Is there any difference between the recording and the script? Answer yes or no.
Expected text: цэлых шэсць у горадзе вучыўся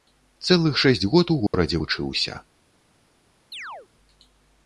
yes